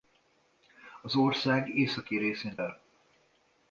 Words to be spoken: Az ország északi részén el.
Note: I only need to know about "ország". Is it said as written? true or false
true